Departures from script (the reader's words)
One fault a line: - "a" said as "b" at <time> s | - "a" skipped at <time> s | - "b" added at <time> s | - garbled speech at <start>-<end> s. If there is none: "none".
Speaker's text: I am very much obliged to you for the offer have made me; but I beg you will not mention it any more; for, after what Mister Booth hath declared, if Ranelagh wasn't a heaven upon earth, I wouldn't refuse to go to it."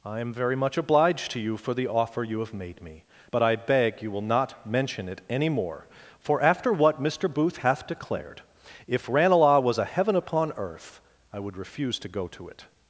- "you" added at 2.2 s
- "wasn't" said as "was" at 9.6 s
- "wouldn't" said as "would" at 11.4 s